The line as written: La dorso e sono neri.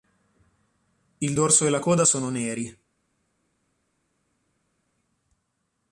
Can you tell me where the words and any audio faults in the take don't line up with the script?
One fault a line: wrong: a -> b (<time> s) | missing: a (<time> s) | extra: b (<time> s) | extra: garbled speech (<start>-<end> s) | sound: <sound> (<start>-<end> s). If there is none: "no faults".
wrong: La -> Il (1.2 s)
extra: la coda (1.7 s)